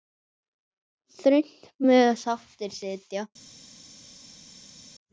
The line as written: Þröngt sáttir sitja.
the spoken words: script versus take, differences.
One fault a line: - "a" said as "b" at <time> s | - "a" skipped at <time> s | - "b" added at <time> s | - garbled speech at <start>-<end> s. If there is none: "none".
- "mega" added at 1.9 s